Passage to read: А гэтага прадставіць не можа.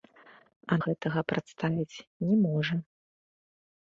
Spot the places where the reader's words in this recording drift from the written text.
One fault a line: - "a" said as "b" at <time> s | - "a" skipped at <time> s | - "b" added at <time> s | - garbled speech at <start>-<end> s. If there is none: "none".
none